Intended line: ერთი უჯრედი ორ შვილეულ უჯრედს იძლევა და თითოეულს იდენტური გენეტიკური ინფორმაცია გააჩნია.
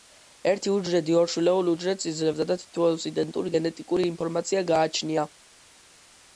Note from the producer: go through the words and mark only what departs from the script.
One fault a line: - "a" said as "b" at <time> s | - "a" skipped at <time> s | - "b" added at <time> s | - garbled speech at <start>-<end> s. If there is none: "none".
none